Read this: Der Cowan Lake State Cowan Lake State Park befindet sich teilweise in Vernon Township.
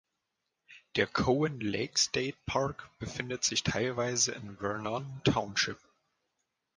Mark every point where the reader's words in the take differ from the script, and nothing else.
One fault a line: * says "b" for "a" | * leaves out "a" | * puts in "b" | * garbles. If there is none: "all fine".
* leaves out "Cowan Lake State"